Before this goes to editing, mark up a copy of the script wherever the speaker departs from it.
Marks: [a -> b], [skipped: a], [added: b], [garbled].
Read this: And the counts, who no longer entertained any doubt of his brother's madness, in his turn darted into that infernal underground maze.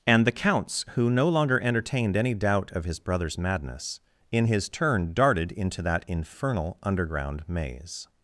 And the counts, who no longer entertained any doubt of his brother's madness, in his turn darted into that infernal underground maze.